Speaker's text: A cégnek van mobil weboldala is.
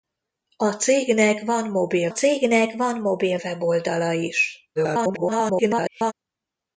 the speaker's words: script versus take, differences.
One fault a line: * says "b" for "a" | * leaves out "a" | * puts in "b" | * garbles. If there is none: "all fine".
* puts in "cégnek van mobil"
* garbles